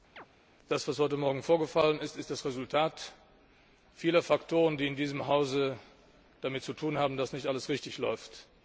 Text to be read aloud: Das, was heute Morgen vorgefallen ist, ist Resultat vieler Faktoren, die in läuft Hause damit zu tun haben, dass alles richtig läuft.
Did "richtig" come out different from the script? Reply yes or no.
no